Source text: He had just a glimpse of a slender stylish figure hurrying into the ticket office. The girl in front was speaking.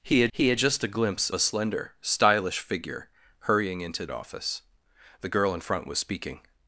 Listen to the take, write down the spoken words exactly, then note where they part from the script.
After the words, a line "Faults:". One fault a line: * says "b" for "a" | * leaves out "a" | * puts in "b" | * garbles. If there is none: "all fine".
He had he had just a glimpse a slender stylish figure hurrying into office. The girl in front was speaking.
Faults:
* puts in "he had"
* leaves out "of"
* leaves out "the ticket"